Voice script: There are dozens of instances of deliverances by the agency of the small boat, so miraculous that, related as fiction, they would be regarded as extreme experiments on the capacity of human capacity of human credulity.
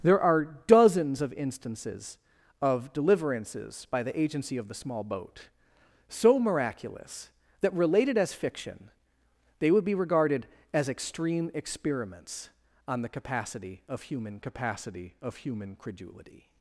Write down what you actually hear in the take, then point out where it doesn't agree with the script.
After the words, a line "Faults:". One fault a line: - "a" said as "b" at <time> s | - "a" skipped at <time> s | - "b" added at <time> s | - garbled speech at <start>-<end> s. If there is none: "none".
There are dozens of instances of deliverances by the agency of the small boat, so miraculous that, related as fiction, they would be regarded as extreme experiments on the capacity of human capacity of human credulity.
Faults:
none